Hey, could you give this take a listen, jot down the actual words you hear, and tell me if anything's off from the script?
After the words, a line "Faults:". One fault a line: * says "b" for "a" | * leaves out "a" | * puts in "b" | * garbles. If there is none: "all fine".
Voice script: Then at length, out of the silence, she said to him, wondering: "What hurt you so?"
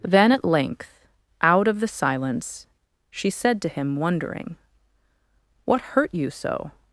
Then at length, out of the silence, she said to him, wondering: "What hurt you so?"
Faults:
all fine